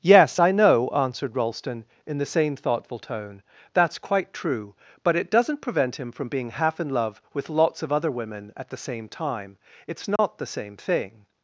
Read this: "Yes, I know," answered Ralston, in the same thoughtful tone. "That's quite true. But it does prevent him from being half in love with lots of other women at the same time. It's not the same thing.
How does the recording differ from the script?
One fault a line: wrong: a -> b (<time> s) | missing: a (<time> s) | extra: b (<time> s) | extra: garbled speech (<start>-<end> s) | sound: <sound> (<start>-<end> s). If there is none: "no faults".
wrong: does -> doesn't (5.3 s)
sound: dropout (10.2-10.2 s)